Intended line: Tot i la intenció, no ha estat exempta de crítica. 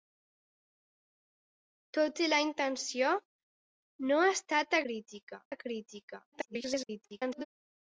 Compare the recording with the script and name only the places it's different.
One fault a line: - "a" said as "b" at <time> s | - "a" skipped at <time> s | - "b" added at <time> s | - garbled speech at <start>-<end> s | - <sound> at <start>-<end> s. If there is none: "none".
- "exempta" said as "crítica" at 4.9 s
- garbled speech at 6.3-7.5 s